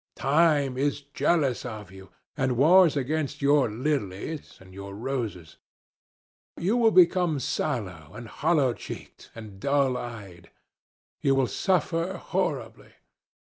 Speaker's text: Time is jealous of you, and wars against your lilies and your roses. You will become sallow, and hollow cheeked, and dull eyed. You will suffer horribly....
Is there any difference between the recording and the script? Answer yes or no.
no